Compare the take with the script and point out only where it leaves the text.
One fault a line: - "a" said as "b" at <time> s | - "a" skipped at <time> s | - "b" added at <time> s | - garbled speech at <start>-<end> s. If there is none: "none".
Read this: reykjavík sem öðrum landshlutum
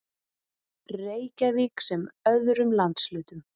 none